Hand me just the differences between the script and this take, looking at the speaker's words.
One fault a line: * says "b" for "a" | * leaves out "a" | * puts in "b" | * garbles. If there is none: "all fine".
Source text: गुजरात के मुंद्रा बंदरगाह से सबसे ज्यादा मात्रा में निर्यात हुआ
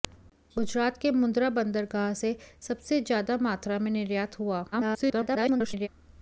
* garbles